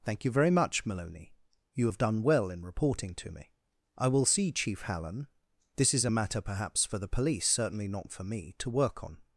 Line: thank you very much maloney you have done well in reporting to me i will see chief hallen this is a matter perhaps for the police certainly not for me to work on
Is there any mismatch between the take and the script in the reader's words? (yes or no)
no